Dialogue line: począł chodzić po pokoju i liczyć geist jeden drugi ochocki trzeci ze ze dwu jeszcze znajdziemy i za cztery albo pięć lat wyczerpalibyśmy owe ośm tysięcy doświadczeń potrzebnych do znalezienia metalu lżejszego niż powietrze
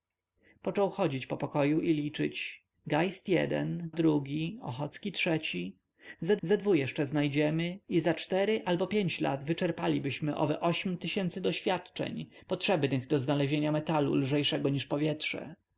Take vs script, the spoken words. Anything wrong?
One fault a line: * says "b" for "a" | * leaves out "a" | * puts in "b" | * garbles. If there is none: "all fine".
all fine